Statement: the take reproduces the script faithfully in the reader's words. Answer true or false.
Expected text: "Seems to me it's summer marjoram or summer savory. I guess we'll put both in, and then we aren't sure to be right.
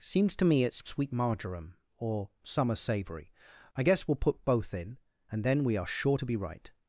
false